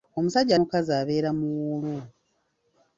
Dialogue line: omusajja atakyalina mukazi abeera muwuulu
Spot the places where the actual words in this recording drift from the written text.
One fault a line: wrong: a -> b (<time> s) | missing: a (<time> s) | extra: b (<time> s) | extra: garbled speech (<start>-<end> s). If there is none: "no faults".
missing: atakyalina (0.5 s)